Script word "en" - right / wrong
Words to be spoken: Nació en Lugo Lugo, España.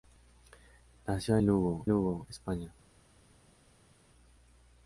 right